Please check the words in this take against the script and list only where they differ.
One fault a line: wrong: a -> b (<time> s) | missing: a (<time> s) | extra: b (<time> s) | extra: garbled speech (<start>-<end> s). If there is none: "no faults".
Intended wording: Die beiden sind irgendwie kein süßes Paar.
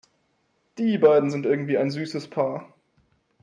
wrong: kein -> ein (1.8 s)